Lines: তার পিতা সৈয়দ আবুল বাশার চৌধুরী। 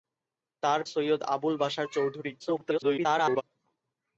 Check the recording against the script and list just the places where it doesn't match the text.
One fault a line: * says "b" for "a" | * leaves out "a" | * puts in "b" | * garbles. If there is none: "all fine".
* leaves out "পিতা"
* garbles